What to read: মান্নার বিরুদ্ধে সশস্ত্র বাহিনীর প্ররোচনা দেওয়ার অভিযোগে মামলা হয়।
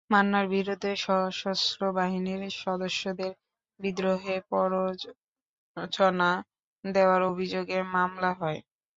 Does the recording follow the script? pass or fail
fail